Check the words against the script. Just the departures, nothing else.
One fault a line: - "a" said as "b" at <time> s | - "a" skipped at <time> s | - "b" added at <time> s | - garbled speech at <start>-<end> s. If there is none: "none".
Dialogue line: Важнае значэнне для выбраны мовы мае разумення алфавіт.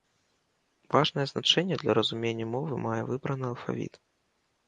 - "выбраны" said as "разумення" at 2.0 s
- "разумення" said as "выбраны" at 3.1 s